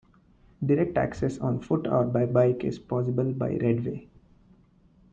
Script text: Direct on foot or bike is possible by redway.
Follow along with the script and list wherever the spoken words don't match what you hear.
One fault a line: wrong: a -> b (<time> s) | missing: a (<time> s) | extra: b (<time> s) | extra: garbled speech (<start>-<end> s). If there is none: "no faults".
extra: access (1.0 s)
extra: by (2.0 s)